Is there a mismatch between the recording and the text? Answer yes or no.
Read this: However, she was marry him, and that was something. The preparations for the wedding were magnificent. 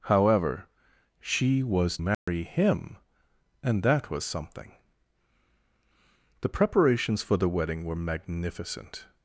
no